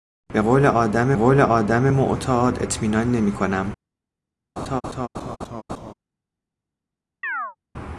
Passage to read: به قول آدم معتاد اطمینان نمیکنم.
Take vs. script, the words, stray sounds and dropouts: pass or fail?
fail